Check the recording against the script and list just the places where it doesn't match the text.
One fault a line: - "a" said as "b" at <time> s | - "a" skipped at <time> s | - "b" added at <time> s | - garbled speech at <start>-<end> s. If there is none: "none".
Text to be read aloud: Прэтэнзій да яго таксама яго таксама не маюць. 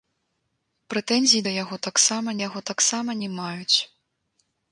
none